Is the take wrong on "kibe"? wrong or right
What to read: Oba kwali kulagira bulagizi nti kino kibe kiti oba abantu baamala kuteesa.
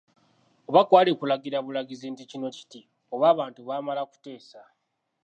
wrong